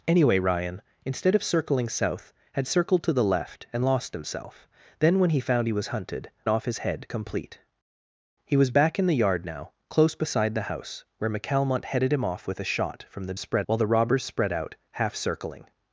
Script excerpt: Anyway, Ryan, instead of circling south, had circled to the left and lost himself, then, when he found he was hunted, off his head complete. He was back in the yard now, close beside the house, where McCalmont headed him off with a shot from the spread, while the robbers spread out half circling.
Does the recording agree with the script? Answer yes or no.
yes